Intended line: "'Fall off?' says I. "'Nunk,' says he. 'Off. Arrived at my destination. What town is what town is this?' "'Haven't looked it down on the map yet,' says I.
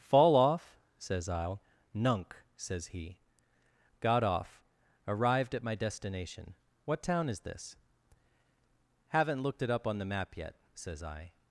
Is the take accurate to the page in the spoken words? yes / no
no